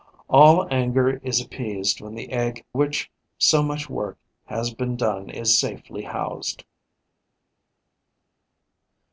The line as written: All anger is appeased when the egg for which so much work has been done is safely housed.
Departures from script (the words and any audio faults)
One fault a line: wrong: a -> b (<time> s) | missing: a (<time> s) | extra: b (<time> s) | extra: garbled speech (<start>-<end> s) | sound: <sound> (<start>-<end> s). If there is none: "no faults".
missing: for (2.6 s)